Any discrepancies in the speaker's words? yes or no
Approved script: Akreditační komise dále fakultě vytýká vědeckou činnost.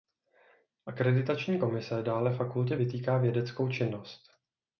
no